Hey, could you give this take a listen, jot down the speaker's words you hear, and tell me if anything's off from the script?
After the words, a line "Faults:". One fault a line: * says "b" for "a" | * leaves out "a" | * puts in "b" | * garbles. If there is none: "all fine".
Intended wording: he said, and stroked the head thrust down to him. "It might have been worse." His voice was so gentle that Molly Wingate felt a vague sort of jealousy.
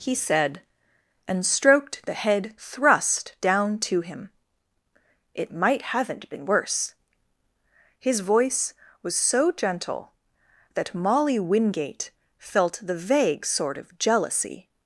he said, and stroked the head thrust down to him. "It might haven't been worse." His voice was so gentle that Molly Wingate felt the vague sort of jealousy.
Faults:
* says "haven't" for "have"
* says "the" for "a"